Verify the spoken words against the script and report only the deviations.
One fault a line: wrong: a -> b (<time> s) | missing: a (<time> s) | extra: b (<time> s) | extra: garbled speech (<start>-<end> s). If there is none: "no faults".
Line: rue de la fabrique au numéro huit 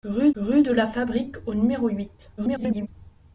extra: rue (0.3 s)
extra: garbled speech (2.4-2.9 s)